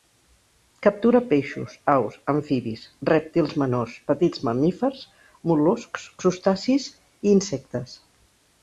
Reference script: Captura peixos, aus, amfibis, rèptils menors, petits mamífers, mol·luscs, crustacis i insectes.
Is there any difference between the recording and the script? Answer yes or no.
no